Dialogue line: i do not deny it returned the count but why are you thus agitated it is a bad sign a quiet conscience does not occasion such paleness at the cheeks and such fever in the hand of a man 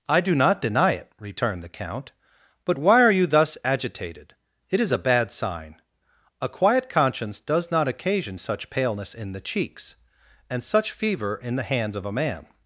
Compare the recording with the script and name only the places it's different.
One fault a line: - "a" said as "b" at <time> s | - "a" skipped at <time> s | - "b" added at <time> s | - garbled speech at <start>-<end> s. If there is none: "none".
- "at" said as "in" at 9.1 s
- "hand" said as "hands" at 11.6 s